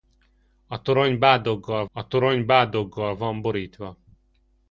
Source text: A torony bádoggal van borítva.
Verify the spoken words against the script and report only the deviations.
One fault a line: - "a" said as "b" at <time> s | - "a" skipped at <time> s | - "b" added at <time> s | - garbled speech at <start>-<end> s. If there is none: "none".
- "a torony bádoggal" added at 1.9 s